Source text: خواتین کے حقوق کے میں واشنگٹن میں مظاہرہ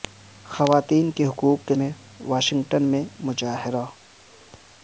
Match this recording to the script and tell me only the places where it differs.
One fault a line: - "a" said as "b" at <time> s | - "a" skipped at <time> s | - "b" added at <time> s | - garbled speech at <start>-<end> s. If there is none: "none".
none